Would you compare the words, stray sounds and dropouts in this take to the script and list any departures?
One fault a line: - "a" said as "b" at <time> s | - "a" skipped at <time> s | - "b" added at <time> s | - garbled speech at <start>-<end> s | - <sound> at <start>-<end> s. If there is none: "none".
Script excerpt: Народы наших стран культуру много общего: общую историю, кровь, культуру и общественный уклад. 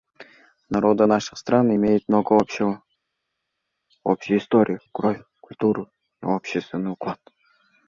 - "культуру" said as "имеют" at 1.7 s